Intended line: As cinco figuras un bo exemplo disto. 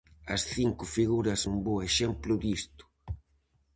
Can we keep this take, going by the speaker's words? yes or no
yes